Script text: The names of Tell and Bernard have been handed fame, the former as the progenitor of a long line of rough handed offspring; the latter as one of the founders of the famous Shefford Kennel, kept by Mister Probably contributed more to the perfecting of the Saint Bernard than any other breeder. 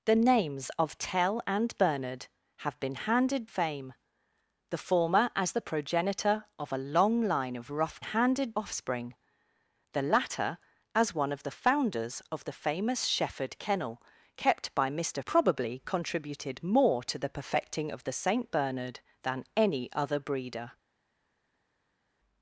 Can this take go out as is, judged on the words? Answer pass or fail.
pass